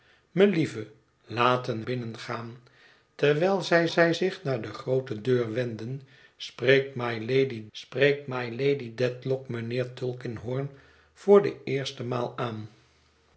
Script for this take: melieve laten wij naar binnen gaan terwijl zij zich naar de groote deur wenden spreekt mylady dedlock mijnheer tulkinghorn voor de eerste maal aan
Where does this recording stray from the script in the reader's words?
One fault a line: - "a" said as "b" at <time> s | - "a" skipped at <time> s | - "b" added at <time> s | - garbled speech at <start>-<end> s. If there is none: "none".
- "wij naar" skipped at 1.8 s
- "zij" added at 3.9 s
- "spreekt mylady" added at 7.7 s